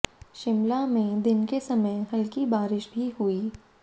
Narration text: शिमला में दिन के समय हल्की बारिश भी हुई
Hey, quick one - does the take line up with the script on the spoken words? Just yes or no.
yes